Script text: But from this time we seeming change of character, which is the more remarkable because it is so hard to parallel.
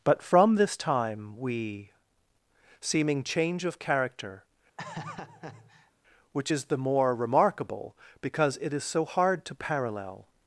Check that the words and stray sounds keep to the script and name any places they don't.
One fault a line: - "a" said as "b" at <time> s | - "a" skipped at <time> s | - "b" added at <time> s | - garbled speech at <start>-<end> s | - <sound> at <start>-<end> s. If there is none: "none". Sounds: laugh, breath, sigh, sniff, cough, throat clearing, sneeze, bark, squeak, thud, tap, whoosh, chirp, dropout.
- laugh at 4.8-5.9 s